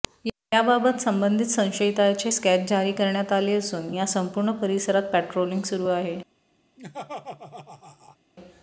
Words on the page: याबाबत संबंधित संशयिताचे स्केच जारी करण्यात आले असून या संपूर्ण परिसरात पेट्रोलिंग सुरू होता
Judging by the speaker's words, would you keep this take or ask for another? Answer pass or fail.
fail